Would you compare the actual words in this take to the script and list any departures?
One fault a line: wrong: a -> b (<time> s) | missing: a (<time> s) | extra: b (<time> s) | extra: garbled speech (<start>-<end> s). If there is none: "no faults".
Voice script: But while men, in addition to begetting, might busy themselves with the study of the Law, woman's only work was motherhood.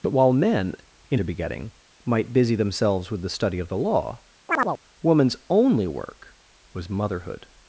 missing: addition (1.2 s)